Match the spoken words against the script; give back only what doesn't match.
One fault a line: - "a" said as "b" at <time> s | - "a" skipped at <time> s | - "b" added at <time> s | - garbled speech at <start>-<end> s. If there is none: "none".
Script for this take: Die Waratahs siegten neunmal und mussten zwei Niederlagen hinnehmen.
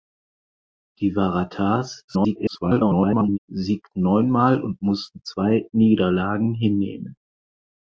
- garbled speech at 2.1-3.4 s